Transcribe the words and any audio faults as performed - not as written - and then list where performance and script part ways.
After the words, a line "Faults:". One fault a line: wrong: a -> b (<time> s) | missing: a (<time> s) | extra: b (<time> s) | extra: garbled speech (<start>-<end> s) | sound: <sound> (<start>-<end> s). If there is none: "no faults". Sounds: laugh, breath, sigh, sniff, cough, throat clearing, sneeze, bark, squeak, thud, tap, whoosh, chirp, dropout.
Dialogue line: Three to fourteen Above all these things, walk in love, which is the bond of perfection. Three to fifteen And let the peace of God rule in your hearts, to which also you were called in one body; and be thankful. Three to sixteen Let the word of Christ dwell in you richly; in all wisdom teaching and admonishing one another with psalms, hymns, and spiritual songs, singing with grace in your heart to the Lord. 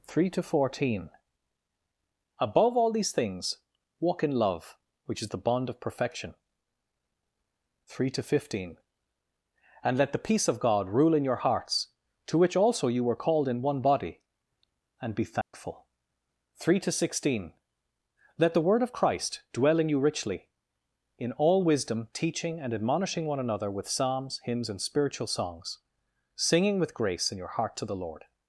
Three to fourteen Above all these things, walk in love, which is the bond of perfection. Three to fifteen And let the peace of God rule in your hearts, to which also you were called in one body; and be thankful. Three to sixteen Let the word of Christ dwell in you richly; in all wisdom teaching and admonishing one another with psalms, hymns, and spiritual songs, singing with grace in your heart to the Lord.
Faults:
sound: dropout (15.4-15.5 s)